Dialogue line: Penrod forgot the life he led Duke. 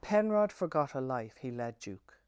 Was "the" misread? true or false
true